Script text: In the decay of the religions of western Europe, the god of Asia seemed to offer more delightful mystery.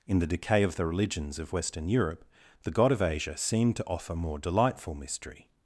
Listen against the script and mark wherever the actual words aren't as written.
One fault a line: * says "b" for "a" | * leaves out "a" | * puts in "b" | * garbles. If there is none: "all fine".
all fine